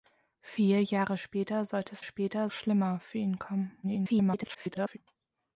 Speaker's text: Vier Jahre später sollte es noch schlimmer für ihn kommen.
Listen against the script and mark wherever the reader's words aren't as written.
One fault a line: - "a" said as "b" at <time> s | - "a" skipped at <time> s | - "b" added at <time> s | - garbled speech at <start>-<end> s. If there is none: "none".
- "noch" said as "später" at 2.0 s
- garbled speech at 3.8-5.0 s